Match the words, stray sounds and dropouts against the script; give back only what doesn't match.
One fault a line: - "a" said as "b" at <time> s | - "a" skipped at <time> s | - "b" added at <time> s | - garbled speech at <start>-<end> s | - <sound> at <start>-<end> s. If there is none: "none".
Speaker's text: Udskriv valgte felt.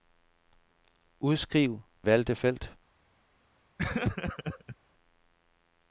- laugh at 3.8-4.8 s